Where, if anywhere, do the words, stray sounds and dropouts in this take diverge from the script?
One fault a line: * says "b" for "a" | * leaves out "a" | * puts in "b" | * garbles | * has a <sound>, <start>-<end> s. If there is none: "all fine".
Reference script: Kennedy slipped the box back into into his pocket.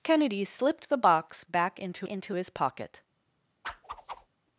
* has a whoosh, 3.6-4.3 s